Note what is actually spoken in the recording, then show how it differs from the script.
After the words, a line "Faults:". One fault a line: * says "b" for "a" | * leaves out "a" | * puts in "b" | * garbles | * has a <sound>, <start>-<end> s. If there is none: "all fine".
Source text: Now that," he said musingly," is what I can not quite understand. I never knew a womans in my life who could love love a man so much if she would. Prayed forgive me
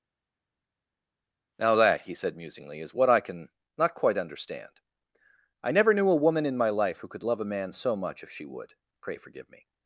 Now that," he said musingly," is what I can not quite understand. I never knew a woman in my life who could love a man so much if she would. Pray forgive me
Faults:
* says "woman" for "womans"
* leaves out "love"
* says "Pray" for "Prayed"